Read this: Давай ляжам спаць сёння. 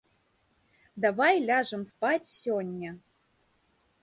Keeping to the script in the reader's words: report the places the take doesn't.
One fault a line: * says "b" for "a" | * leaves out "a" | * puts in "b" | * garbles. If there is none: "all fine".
all fine